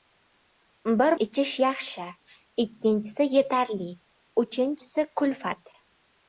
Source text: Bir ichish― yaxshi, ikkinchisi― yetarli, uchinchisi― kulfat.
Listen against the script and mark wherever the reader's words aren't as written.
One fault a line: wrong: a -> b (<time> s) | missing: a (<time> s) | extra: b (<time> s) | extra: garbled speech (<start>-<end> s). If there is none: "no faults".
no faults